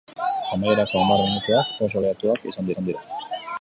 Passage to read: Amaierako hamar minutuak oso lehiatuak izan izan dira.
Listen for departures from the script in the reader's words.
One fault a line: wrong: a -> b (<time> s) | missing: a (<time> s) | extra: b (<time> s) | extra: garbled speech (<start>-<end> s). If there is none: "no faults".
no faults